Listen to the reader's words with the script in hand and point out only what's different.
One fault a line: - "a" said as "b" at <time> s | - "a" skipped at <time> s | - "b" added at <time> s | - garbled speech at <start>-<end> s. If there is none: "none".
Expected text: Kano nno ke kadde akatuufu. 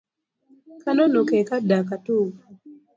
none